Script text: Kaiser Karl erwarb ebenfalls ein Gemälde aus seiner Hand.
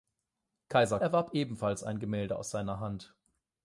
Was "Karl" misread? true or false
true